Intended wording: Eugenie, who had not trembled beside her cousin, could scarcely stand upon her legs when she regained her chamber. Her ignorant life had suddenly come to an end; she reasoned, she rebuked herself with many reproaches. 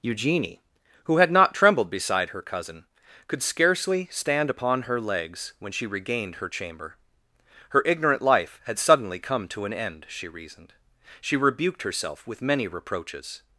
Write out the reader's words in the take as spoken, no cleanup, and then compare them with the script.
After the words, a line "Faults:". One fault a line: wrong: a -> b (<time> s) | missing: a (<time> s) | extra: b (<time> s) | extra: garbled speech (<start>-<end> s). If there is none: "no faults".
Eugenie, who had not trembled beside her cousin, could scarcely stand upon her legs when she regained her chamber. Her ignorant life had suddenly come to an end; she reasoned, she rebuked herself with many reproaches.
Faults:
no faults